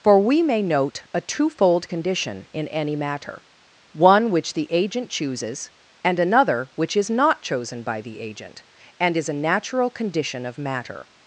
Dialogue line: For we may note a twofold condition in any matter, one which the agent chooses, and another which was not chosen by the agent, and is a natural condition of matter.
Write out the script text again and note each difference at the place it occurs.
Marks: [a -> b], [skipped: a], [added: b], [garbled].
For we may note a twofold condition in any matter, one which the agent chooses, and another which [was -> is] not chosen by the agent, and is a natural condition of matter.